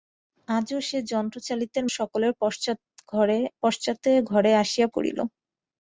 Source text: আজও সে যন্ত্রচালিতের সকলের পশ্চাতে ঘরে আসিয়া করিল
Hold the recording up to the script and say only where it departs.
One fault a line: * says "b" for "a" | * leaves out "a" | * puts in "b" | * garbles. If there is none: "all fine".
all fine